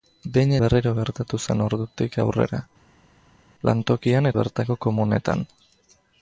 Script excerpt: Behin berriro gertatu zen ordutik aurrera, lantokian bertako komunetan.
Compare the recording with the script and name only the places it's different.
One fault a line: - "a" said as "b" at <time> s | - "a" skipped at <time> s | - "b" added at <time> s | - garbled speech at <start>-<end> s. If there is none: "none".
none